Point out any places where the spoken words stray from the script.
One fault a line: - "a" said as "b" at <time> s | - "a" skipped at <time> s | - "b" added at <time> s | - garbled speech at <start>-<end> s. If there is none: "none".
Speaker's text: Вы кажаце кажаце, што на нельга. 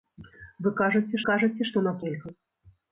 none